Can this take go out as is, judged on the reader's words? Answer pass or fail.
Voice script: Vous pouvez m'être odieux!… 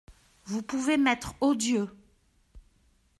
pass